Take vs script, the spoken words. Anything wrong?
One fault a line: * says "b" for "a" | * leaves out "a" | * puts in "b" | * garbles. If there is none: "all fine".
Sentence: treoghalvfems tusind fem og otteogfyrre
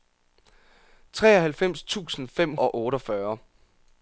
all fine